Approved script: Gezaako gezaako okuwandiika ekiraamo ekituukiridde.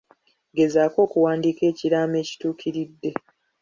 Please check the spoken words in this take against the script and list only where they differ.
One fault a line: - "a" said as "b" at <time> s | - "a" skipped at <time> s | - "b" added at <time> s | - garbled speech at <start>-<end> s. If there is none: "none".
- "gezaako" skipped at 1.0 s